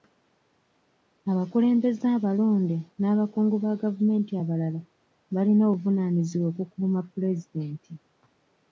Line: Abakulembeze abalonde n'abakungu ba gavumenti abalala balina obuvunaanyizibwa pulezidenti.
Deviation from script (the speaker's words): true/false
true